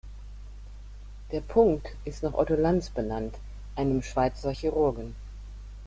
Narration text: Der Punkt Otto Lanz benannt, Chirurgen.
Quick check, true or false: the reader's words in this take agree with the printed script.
false